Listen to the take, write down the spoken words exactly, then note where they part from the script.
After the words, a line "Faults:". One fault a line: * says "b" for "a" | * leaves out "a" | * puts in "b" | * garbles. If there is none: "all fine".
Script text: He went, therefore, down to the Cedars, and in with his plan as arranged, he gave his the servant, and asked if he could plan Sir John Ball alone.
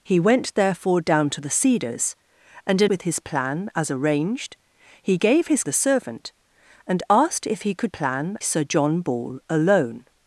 He went, therefore, down to the Cedars, and in with his plan as arranged, he gave his the servant, and asked if he could plan Sir John Ball alone.
Faults:
all fine